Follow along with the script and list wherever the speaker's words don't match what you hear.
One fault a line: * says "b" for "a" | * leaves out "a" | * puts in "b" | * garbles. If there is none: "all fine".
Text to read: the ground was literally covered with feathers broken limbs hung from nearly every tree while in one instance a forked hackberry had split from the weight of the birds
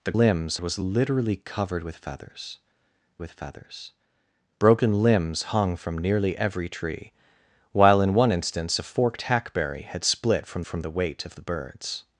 * says "limbs" for "ground"
* puts in "with feathers"
* puts in "from"